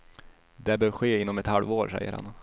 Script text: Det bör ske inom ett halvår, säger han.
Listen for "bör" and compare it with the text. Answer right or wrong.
right